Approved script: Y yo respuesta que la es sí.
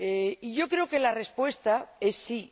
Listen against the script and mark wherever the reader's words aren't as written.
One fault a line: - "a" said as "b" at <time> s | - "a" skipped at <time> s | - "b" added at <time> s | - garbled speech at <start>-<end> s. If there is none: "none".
- "respuesta" said as "creo" at 0.7 s
- "respuesta" added at 1.1 s